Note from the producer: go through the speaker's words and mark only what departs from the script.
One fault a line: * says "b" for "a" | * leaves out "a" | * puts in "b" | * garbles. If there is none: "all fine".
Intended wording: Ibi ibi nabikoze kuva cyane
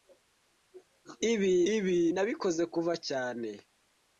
all fine